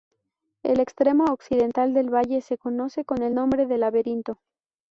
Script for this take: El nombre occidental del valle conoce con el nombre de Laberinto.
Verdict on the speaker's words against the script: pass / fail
fail